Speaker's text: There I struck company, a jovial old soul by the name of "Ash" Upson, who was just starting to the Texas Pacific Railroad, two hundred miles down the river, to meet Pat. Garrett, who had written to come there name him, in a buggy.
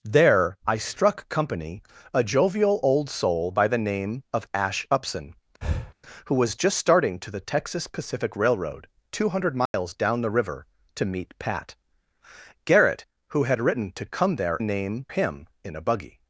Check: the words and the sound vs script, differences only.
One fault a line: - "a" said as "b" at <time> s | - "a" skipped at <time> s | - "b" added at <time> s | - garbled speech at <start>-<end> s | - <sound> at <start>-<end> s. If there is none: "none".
- breath at 5.6-5.9 s
- dropout at 9.7-9.7 s